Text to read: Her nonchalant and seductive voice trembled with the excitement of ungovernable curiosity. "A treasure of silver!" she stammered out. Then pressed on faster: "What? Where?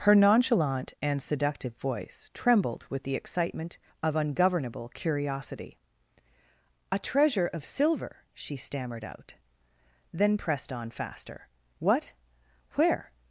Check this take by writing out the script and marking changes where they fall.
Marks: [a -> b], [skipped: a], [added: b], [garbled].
Her nonchalant and seductive voice trembled with the excitement of ungovernable curiosity. "A treasure of silver!" she stammered out. Then pressed on faster: "What? Where?